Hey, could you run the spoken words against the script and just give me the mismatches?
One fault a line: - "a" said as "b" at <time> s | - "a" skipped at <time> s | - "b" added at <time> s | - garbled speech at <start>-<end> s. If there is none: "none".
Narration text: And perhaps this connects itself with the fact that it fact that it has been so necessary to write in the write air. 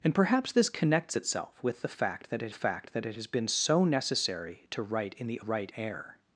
none